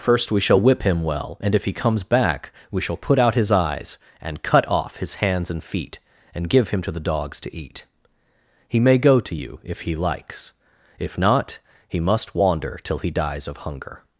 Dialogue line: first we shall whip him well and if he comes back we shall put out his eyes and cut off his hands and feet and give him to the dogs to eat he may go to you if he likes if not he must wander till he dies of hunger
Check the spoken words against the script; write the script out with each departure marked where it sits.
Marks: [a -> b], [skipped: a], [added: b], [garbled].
first we shall whip him well and if he comes back we shall put out his eyes and cut off his hands and feet and give him to the dogs to eat he may go to you if he likes if not he must wander till he dies of hunger